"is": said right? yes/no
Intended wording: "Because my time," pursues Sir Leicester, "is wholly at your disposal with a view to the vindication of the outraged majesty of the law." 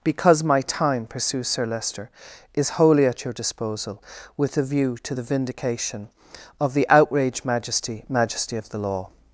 yes